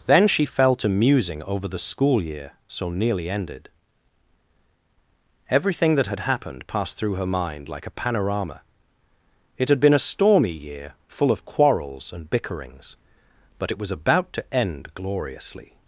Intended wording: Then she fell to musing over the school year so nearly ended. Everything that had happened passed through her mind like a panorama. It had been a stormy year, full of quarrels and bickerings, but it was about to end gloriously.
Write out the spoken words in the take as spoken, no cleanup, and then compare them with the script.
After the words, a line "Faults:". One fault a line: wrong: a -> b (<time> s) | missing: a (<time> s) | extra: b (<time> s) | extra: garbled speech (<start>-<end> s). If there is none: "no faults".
Then she fell to musing over the school year so nearly ended. Everything that had happened passed through her mind like a panorama. It had been a stormy year, full of quarrels and bickerings, but it was about to end gloriously.
Faults:
no faults